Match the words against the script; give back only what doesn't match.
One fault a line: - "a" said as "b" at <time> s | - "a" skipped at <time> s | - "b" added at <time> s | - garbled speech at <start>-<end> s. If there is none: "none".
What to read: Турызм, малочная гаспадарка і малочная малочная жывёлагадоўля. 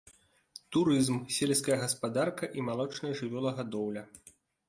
- "малочная" said as "сельская" at 1.4 s
- "малочная" skipped at 3.1 s